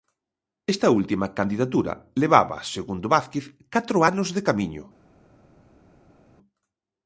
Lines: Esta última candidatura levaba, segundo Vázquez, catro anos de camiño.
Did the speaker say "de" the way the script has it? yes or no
yes